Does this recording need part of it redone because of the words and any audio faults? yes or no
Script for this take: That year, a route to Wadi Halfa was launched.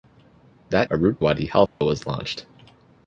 yes